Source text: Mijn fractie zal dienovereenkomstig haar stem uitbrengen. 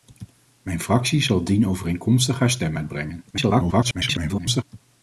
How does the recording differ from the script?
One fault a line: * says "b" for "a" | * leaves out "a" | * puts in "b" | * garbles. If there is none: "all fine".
* garbles